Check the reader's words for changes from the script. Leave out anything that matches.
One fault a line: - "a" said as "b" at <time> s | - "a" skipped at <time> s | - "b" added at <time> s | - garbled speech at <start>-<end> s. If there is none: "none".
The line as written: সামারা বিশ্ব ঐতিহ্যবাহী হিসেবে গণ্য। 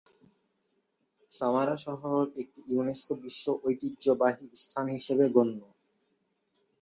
- "শহর একটি ইউনেস্কো" added at 1.9 s
- "স্থান" added at 4.6 s